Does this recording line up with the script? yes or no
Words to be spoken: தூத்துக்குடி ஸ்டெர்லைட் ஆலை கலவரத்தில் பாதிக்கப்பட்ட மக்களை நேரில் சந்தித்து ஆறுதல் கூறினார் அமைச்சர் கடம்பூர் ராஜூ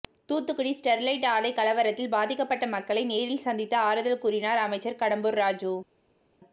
yes